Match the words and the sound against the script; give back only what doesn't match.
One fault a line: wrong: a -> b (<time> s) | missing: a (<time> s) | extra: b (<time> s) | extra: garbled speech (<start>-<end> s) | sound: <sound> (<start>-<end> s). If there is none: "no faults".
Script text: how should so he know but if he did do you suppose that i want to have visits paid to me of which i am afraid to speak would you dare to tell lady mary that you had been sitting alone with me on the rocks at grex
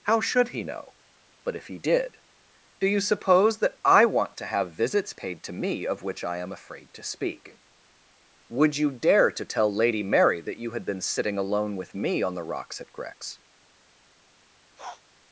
missing: so (0.5 s)
sound: sniff (14.8-15.0 s)